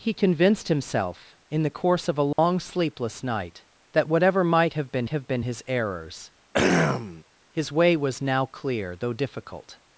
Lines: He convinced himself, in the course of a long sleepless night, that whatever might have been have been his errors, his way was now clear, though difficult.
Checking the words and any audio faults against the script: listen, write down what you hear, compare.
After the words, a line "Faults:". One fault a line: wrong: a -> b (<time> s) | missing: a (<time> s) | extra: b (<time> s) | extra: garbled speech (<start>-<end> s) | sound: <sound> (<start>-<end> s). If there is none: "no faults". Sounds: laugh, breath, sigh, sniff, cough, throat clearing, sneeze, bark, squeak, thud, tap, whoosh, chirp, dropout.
He convinced himself, in the course of a long sleepless night, that whatever might have been have been his errors, his way was now clear, though difficult.
Faults:
sound: dropout (2.3-2.4 s)
sound: throat clearing (6.5-7.2 s)